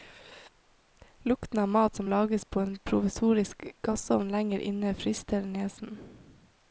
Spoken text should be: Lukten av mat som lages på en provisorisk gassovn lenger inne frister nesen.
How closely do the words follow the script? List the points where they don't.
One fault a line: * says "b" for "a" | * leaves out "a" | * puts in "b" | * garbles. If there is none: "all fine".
all fine